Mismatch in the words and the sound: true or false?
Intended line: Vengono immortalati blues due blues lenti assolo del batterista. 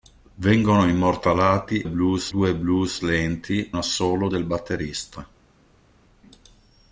false